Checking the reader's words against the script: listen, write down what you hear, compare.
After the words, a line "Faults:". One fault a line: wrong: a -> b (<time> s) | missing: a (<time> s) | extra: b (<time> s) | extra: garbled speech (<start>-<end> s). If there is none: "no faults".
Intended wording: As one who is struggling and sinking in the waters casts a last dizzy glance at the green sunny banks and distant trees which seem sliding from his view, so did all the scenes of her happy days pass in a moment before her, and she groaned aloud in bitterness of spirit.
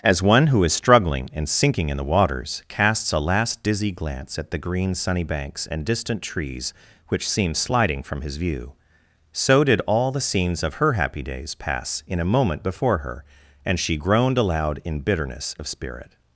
As one who is struggling and sinking in the waters casts a last dizzy glance at the green sunny banks and distant trees which seem sliding from his view, so did all the scenes of her happy days pass in a moment before her, and she groaned aloud in bitterness of spirit.
Faults:
no faults